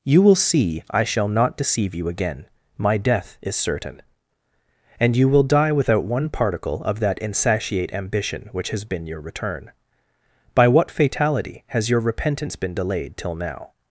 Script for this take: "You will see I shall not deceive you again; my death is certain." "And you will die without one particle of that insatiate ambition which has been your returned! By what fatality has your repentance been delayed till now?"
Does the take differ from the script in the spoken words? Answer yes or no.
yes